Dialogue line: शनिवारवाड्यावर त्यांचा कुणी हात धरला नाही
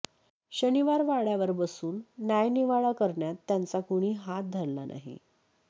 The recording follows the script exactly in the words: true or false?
false